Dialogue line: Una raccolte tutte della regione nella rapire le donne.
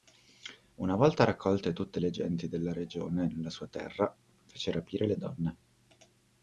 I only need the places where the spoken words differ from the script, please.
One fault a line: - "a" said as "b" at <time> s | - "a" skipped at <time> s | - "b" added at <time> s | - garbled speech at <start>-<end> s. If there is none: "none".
- "volta" added at 0.9 s
- "le genti" added at 2.0 s
- "sua terra fece" added at 3.5 s